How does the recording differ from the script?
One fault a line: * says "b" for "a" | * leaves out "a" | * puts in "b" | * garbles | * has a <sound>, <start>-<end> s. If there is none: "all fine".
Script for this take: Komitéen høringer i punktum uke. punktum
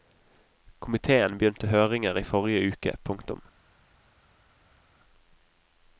* puts in "begynte"
* says "forrige" for "punktum"